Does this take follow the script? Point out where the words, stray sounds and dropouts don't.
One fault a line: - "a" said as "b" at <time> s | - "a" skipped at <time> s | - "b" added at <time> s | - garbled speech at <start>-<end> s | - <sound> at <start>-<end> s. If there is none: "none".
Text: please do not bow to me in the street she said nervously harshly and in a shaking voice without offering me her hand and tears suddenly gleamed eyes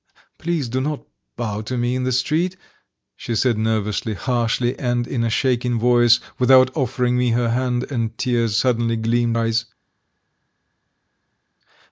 none